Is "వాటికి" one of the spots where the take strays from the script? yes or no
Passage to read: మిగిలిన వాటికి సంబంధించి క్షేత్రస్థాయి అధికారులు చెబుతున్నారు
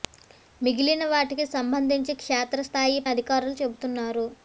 no